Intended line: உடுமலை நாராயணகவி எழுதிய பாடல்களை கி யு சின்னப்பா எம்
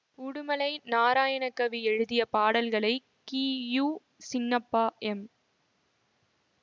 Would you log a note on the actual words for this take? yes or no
no